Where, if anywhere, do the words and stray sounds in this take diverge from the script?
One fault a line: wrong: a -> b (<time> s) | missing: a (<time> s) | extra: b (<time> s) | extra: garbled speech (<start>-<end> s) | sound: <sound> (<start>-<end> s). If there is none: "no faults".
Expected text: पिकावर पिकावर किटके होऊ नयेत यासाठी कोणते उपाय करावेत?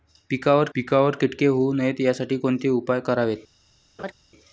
sound: laugh (4.0-4.1 s)